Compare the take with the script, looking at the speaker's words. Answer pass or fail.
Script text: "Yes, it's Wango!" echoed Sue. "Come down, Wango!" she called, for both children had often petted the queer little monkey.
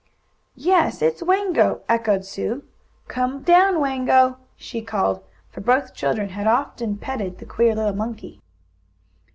pass